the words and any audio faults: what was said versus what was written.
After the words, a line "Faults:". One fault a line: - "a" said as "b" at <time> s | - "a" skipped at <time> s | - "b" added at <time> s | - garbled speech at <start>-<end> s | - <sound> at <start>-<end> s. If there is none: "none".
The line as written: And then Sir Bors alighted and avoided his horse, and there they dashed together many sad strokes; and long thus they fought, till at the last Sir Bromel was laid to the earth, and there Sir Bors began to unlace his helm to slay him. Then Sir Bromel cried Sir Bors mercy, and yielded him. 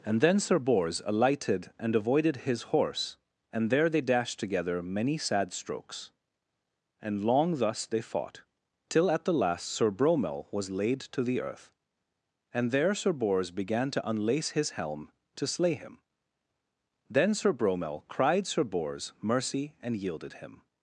And then Sir Bors alighted and avoided his horse, and there they dashed together many sad strokes; and long thus they fought, till at the last Sir Bromel was laid to the earth, and there Sir Bors began to unlace his helm to slay him. Then Sir Bromel cried Sir Bors mercy, and yielded him.
Faults:
none